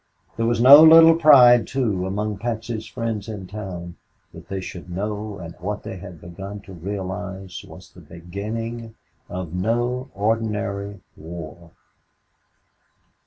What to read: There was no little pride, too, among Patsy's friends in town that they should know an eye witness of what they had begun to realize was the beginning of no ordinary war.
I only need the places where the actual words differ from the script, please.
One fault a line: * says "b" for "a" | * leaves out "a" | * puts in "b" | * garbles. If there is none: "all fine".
* leaves out "eye witness of"